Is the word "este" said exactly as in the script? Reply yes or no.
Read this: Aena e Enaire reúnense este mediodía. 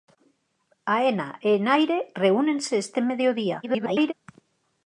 yes